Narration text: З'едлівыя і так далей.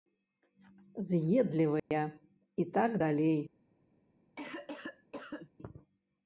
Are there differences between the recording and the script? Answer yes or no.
no